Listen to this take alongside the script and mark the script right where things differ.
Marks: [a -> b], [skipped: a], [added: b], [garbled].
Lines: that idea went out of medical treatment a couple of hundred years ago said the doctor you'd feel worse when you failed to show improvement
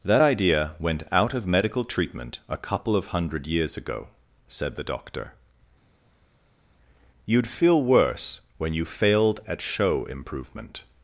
that idea went out of medical treatment a couple of hundred years ago said the doctor you'd feel worse when you failed [to -> at] show improvement